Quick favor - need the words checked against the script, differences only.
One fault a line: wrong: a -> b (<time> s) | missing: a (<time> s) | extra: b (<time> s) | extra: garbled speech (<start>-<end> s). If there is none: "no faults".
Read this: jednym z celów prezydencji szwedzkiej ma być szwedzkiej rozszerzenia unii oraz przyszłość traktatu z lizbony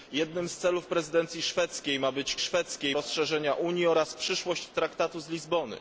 no faults